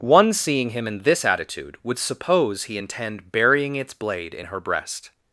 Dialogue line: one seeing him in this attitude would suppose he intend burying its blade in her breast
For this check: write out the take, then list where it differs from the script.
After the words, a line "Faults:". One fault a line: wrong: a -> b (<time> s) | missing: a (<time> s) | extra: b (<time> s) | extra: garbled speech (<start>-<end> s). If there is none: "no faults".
one seeing him in this attitude would suppose he intend burying its blade in her breast
Faults:
no faults